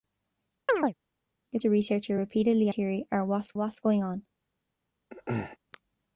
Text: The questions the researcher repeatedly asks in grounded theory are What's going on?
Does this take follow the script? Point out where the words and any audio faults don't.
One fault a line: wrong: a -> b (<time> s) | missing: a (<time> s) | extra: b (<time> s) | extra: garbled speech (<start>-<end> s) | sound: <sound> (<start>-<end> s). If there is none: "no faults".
sound: chirp (0.7-0.9 s)
missing: questions (1.6 s)
missing: asks in grounded (2.7 s)
extra: What's (3.6 s)
sound: throat clearing (5.1-5.6 s)